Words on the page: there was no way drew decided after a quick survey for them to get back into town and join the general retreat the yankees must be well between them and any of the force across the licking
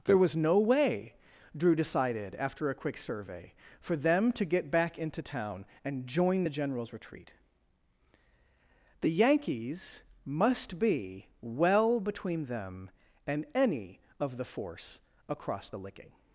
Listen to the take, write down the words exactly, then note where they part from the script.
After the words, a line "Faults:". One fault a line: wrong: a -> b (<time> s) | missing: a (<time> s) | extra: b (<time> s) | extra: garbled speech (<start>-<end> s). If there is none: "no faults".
there was no way drew decided after a quick survey for them to get back into town and join the generals retreat the yankees must be well between them and any of the force across the licking
Faults:
wrong: general -> generals (6.5 s)